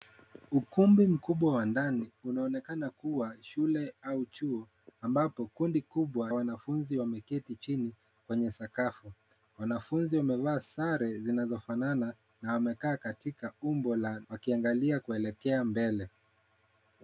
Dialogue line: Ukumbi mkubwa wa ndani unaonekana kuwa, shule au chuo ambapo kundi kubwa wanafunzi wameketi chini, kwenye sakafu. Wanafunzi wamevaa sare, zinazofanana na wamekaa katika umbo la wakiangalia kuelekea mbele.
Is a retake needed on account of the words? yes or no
no